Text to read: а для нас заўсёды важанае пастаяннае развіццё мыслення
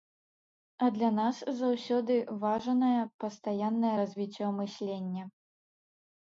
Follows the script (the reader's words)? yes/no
yes